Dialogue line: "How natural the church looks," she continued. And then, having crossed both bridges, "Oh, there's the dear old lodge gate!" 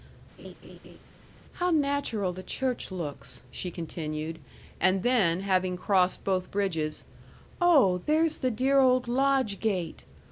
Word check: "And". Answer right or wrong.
right